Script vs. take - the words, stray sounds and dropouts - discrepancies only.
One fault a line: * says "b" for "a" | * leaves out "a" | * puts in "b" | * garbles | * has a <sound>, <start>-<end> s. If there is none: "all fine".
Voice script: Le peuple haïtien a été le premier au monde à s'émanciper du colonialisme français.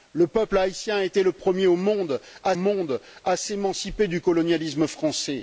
* puts in "monde à"